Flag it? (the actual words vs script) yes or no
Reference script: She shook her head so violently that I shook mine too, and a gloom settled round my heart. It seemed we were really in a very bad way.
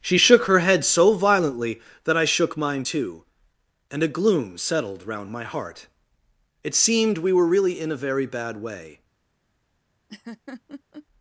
no